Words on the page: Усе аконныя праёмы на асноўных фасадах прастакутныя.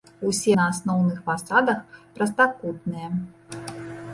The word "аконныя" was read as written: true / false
false